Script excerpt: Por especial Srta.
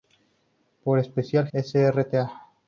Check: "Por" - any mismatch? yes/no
no